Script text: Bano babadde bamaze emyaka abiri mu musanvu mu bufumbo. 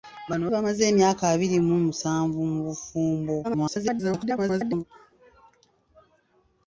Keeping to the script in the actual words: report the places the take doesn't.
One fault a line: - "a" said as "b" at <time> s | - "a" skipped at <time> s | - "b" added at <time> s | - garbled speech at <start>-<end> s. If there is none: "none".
- "babadde" skipped at 0.4 s
- garbled speech at 3.4-4.8 s